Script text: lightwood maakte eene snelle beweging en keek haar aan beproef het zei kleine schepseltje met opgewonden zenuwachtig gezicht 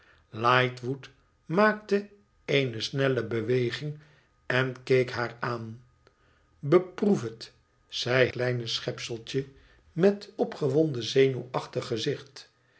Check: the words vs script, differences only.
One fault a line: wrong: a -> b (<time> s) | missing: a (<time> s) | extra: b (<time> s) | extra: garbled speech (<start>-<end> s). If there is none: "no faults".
no faults